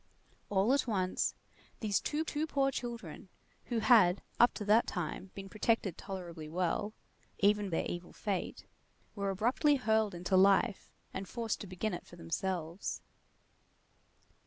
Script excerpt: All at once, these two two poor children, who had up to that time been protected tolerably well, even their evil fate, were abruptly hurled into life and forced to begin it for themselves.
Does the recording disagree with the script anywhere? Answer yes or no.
no